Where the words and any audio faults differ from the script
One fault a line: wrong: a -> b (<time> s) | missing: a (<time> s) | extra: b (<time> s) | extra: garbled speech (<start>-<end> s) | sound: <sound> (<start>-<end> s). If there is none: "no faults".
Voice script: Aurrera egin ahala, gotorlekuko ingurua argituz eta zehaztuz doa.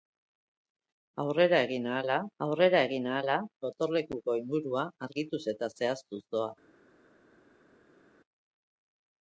extra: aurrera egin ahala (2.5 s)